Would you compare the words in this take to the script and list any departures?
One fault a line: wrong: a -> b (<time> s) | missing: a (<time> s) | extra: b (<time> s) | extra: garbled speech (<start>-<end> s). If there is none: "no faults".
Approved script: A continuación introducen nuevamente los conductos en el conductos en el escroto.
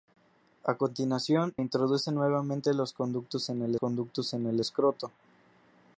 no faults